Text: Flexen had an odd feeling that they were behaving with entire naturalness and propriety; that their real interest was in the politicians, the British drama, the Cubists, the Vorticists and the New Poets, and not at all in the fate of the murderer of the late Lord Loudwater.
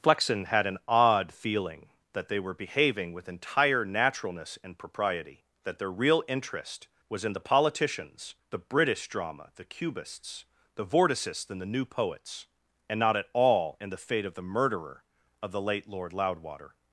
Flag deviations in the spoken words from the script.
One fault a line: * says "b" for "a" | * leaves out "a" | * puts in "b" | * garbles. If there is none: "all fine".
all fine